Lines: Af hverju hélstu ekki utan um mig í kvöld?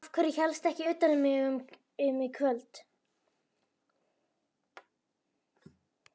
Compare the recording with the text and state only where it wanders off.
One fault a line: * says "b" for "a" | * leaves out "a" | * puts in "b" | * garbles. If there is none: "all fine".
all fine